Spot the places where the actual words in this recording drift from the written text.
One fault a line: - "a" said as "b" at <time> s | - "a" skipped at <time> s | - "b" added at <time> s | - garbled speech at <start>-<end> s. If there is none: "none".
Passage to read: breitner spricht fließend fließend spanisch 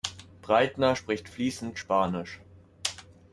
- "fließend" skipped at 1.8 s